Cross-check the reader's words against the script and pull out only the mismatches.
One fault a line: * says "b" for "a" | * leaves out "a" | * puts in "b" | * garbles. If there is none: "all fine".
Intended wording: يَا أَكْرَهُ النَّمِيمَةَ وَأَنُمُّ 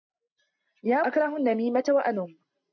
all fine